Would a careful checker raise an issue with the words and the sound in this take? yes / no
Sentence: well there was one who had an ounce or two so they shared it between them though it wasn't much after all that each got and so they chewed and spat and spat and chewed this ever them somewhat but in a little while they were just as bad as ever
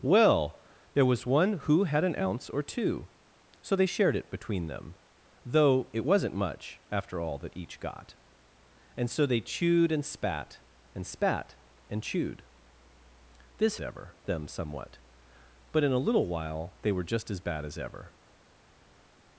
no